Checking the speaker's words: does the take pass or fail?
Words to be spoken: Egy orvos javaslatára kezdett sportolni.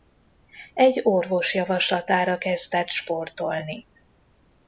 pass